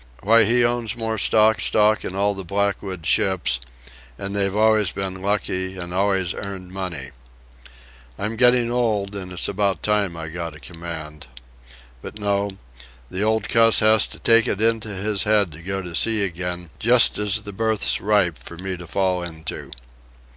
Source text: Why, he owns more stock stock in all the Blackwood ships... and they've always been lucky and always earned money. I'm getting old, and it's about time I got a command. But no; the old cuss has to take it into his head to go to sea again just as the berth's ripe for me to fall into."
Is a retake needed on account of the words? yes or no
no